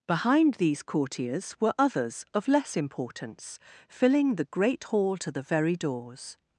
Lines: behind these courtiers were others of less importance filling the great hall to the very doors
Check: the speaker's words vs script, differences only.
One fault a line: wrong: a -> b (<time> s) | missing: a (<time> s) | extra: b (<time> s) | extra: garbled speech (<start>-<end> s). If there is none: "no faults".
no faults